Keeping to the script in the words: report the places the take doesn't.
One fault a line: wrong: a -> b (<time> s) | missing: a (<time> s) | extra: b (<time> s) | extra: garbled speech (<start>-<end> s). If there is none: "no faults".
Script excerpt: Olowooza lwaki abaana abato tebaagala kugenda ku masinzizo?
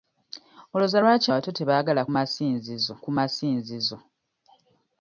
missing: abaana (1.3 s)
wrong: kugenda -> masinzizo (2.1 s)